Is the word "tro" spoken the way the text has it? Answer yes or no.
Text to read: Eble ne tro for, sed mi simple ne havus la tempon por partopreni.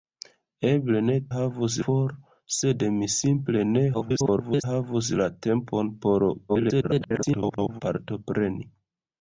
no